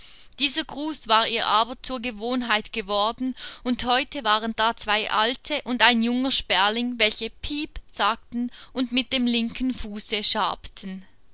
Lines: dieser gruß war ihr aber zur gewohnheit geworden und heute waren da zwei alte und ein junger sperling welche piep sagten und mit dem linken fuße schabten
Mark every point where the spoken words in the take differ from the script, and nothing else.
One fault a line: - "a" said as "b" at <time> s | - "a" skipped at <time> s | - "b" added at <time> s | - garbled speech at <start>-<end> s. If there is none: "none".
none